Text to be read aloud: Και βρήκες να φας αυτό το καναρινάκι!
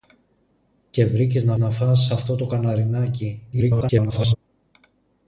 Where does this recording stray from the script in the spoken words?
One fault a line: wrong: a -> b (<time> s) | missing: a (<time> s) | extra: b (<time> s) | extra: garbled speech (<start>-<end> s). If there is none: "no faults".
extra: να (1.6 s)
extra: garbled speech (3.5-4.4 s)